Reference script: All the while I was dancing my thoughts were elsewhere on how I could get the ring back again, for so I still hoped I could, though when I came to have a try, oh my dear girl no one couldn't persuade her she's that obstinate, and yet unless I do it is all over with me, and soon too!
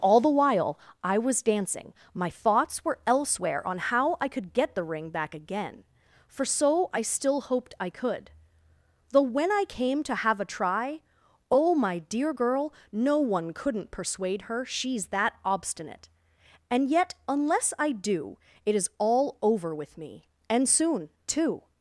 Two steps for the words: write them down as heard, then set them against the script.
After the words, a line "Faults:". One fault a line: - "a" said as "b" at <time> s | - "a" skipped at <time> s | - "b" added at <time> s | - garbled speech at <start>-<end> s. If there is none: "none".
All the while I was dancing my thoughts were elsewhere on how I could get the ring back again, for so I still hoped I could, though when I came to have a try, oh my dear girl no one couldn't persuade her she's that obstinate, and yet unless I do it is all over with me, and soon too!
Faults:
none